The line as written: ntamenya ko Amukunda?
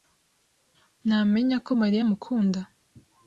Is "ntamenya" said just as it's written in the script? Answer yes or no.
yes